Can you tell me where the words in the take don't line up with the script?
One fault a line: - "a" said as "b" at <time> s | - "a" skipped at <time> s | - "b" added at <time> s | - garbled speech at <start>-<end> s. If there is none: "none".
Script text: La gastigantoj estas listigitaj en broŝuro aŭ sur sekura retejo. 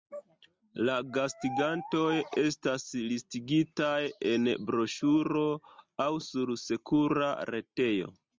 none